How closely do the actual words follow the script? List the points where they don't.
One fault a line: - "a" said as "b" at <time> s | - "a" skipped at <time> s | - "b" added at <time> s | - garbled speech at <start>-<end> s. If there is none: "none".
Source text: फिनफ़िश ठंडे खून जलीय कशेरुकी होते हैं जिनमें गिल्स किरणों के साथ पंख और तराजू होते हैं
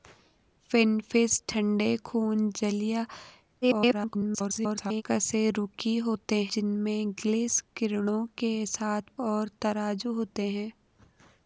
- garbled speech at 3.6-5.0 s
- "हैं" skipped at 6.4 s
- "पंख" skipped at 9.2 s